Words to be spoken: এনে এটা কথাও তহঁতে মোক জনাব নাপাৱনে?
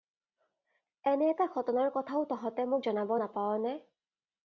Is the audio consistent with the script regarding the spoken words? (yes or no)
no